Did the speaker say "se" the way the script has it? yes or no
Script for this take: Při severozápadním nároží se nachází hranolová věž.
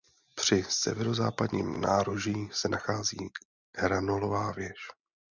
yes